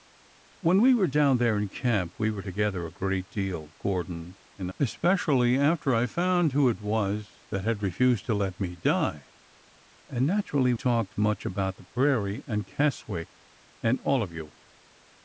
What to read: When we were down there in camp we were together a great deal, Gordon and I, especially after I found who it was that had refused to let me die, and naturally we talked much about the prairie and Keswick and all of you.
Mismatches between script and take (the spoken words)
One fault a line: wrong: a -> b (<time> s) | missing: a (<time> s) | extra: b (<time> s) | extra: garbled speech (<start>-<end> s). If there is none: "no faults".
missing: I (4.7 s)
missing: we (10.7 s)